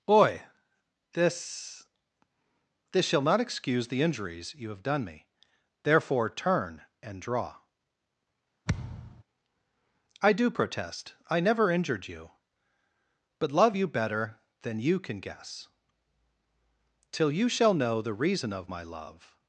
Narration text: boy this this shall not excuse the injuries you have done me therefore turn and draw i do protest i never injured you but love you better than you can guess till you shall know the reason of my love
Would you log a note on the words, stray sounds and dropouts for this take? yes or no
yes